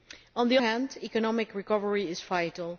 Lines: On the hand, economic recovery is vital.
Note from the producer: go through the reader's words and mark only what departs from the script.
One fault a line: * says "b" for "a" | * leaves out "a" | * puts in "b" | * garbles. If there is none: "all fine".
all fine